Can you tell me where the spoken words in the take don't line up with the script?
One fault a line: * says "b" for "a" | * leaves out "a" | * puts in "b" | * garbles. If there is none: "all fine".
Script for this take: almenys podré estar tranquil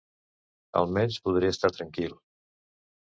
all fine